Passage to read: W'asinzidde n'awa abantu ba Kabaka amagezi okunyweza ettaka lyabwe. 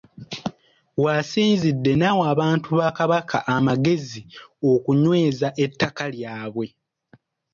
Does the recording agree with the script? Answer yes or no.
yes